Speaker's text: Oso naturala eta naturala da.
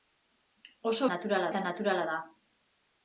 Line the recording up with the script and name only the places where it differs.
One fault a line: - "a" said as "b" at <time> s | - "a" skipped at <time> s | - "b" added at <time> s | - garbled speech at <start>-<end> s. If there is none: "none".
none